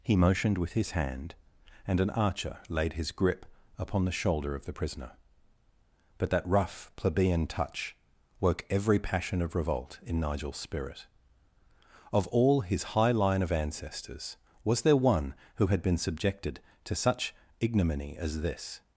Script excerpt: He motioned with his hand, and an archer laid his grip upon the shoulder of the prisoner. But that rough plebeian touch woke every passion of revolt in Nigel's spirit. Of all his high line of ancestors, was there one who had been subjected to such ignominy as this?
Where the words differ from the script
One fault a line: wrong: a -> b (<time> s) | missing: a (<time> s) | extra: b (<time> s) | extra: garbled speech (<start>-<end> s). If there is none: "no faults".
no faults